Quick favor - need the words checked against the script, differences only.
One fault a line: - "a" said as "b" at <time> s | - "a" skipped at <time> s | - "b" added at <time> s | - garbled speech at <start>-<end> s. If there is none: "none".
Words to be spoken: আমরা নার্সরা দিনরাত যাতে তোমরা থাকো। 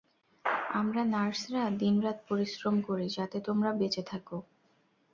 - "পরিশ্রম করি" added at 2.3 s
- "বেঁচে" added at 3.8 s